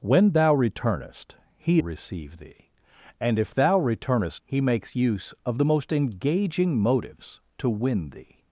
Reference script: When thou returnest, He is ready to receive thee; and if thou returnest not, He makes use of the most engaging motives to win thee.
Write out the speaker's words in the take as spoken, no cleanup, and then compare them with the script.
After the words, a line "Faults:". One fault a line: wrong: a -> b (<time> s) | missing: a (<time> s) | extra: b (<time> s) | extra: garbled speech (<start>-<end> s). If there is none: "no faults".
When thou returnest, He receive thee; and if thou returnest He makes use of the most engaging motives to win thee.
Faults:
missing: is ready to (1.8 s)
missing: not (4.4 s)